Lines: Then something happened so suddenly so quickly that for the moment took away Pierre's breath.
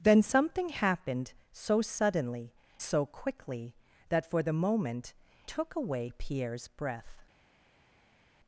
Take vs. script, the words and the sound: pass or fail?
pass